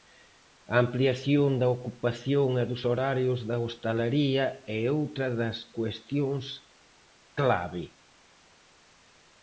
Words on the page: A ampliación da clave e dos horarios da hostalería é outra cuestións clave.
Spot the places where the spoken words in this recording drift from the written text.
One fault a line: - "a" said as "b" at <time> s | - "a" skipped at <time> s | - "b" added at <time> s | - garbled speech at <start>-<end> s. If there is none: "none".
- "clave" said as "ocupación" at 1.8 s
- "das" added at 5.4 s